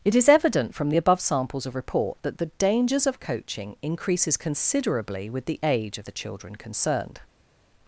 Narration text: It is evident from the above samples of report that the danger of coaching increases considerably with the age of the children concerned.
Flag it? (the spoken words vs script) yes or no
yes